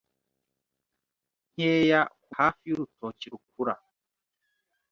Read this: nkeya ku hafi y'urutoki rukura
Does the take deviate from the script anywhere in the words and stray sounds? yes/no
no